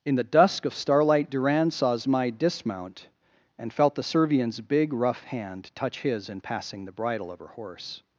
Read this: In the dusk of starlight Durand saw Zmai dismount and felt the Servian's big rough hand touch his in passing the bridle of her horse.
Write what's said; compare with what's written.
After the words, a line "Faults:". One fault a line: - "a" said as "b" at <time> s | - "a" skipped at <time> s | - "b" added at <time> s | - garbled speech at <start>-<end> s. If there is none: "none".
In the dusk of starlight Durand saw Zmai dismount and felt the Servian's big rough hand touch his in passing the bridle of her horse.
Faults:
none